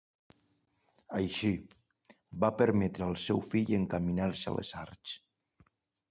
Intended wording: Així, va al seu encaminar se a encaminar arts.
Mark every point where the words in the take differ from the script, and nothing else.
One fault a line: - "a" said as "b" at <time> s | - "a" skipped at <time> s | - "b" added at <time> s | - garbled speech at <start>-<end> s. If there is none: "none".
- "permetre" added at 2.6 s
- "fill" added at 3.5 s
- "encaminar" said as "les" at 4.6 s